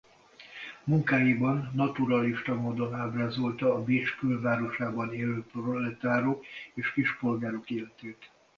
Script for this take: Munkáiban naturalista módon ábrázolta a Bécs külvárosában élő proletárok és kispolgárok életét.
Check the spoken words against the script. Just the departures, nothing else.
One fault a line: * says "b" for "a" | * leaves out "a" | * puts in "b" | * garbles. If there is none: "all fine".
all fine